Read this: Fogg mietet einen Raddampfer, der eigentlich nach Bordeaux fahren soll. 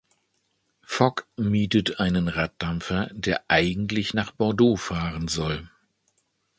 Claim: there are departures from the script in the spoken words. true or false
false